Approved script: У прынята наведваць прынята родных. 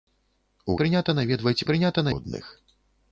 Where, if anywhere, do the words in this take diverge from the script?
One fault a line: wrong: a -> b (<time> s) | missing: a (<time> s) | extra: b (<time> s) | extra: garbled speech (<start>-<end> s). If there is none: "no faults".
no faults